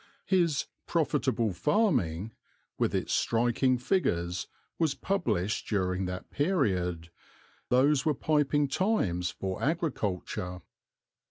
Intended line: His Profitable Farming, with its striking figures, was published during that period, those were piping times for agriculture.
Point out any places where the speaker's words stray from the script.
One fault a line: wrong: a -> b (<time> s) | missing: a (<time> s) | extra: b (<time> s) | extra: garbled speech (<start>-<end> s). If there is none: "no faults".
no faults